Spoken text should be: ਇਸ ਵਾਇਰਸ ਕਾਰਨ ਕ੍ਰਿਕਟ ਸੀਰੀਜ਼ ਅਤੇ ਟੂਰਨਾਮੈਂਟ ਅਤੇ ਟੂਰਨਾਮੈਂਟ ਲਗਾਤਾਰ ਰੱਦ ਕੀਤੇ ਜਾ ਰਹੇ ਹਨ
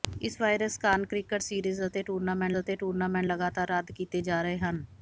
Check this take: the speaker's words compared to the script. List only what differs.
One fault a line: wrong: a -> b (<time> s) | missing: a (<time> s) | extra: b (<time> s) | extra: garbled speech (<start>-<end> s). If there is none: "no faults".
no faults